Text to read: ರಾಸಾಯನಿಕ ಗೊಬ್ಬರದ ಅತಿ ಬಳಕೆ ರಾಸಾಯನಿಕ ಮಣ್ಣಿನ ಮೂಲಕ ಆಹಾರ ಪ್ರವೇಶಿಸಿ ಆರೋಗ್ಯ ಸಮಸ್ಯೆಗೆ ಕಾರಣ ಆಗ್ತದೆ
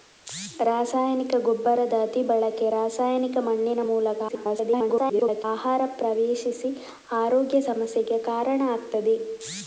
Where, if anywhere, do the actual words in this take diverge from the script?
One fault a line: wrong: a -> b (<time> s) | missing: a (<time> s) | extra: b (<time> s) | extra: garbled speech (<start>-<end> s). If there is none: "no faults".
extra: garbled speech (4.3-5.4 s)